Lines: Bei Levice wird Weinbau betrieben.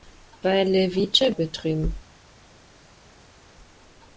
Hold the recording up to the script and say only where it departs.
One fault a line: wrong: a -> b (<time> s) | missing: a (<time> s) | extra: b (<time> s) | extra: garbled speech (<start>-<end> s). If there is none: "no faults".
missing: wird Weinbau (1.3 s)